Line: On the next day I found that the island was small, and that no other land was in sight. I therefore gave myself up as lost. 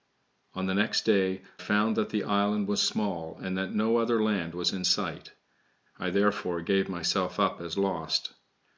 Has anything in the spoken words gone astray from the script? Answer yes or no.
yes